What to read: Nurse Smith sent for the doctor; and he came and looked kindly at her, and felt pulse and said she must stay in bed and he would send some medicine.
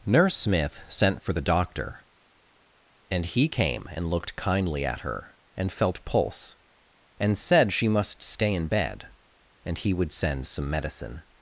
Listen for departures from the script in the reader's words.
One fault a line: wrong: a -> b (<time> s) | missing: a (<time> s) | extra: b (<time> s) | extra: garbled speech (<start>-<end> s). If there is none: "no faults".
no faults